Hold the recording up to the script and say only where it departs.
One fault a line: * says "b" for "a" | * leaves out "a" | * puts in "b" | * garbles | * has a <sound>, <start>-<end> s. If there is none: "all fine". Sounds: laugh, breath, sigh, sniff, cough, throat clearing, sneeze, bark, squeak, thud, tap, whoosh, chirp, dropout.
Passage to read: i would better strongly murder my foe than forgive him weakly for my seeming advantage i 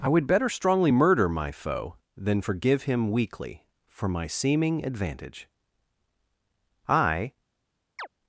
* has a chirp, 8.0-8.1 s